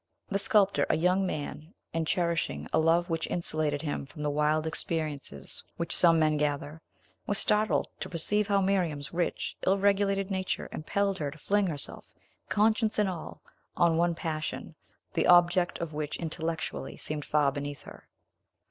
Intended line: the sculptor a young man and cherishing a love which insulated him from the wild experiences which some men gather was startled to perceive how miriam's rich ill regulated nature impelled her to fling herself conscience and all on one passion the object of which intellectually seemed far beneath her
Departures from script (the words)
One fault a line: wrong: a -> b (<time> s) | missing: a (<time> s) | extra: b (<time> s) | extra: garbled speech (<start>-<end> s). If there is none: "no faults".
no faults